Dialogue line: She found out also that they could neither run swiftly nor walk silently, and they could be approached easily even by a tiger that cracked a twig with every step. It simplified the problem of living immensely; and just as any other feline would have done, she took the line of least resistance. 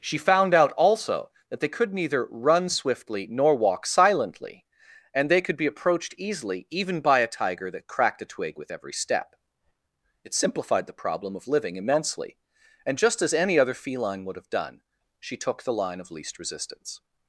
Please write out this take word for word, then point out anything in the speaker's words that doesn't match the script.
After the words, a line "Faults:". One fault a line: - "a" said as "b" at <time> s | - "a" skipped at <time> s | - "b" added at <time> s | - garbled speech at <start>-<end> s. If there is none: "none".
She found out also that they could neither run swiftly nor walk silently, and they could be approached easily even by a tiger that cracked a twig with every step. It simplified the problem of living immensely; and just as any other feline would have done, she took the line of least resistance.
Faults:
none